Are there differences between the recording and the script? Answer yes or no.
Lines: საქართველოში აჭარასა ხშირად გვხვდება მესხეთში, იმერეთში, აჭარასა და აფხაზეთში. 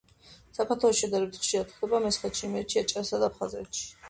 yes